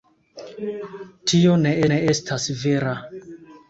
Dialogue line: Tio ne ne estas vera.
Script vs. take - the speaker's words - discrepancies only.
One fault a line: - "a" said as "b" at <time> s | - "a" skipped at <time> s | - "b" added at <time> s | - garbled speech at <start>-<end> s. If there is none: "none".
none